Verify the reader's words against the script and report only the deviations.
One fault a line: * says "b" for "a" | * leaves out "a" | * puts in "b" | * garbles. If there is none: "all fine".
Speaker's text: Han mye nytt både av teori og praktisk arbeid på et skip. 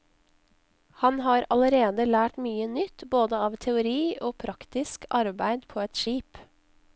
* puts in "har allerede lært"